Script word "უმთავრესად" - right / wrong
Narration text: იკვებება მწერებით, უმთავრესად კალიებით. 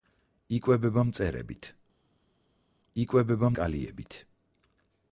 wrong